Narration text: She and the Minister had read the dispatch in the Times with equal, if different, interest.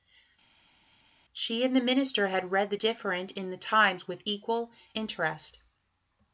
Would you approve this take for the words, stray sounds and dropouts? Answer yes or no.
no